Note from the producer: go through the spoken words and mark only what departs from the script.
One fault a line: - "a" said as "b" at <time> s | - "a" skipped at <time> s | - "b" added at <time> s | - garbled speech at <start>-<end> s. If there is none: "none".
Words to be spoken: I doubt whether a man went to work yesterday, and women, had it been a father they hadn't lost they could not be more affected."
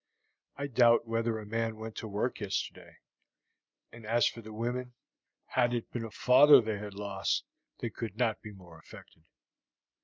- "as for the" added at 4.1 s
- "hadn't" said as "had" at 6.8 s